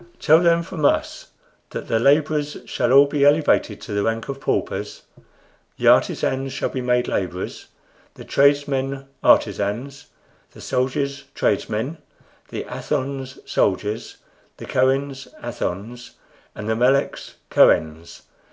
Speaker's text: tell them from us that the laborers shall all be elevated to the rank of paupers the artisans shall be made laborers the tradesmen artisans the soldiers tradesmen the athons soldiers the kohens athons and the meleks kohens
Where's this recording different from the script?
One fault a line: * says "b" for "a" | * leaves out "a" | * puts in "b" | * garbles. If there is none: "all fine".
all fine